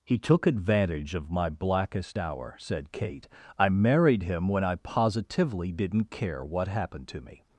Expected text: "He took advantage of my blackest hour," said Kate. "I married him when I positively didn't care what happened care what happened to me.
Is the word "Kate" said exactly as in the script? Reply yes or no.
yes